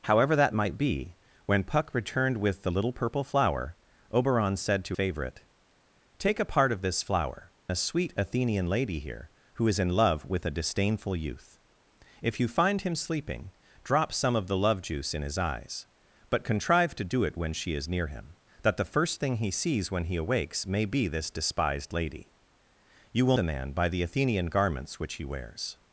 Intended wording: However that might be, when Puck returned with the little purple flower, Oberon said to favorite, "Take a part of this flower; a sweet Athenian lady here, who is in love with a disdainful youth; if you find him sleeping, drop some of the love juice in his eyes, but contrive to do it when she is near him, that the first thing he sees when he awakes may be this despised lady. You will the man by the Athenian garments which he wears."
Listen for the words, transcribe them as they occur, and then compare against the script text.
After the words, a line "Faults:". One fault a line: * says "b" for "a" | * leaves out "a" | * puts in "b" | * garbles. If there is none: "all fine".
However that might be, when Puck returned with the little purple flower, Oberon said to favorite, "Take a part of this flower; a sweet Athenian lady here, who is in love with a disdainful youth; if you find him sleeping, drop some of the love juice in his eyes, but contrive to do it when she is near him, that the first thing he sees when he awakes may be this despised lady. You will the man by the Athenian garments which he wears."
Faults:
all fine